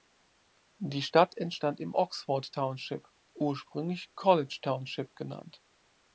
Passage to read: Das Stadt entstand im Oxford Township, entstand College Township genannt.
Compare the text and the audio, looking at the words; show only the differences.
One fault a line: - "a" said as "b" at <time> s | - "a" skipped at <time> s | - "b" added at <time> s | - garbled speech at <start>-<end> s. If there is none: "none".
- "Das" said as "Die" at 0.8 s
- "entstand" said as "ursprünglich" at 3.3 s